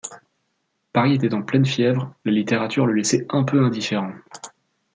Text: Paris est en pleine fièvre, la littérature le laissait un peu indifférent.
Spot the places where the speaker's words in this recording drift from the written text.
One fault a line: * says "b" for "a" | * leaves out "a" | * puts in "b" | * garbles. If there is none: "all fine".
* says "était" for "est"